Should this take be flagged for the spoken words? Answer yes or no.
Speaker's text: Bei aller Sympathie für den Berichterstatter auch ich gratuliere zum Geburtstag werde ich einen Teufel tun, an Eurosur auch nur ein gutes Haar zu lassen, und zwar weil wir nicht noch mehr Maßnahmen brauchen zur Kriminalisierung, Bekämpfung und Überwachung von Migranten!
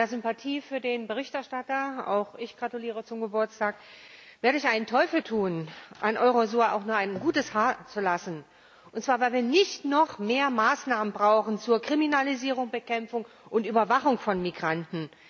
no